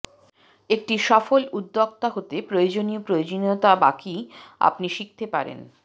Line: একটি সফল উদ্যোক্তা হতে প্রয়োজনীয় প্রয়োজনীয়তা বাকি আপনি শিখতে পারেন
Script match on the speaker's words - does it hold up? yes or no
yes